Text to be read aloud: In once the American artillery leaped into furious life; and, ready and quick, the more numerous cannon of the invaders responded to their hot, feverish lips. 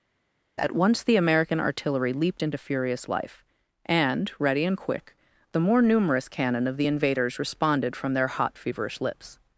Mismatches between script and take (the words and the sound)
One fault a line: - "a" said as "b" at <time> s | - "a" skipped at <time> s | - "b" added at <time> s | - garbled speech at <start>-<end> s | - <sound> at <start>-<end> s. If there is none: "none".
- "In" said as "At" at 0.6 s
- "to" said as "from" at 8.0 s